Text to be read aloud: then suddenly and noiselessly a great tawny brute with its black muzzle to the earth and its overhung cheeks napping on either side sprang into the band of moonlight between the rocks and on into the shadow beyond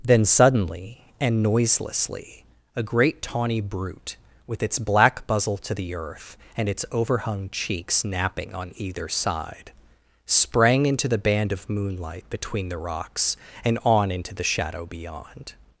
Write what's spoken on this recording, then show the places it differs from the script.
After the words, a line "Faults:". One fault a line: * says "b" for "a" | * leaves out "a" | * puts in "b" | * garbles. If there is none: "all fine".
then suddenly and noiselessly a great tawny brute with its black muzzle to the earth and its overhung cheeks napping on either side sprang into the band of moonlight between the rocks and on into the shadow beyond
Faults:
all fine